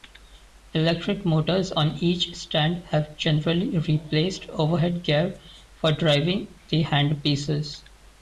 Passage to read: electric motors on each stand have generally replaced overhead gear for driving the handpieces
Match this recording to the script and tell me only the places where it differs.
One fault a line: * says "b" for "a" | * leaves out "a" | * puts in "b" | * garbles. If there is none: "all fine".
all fine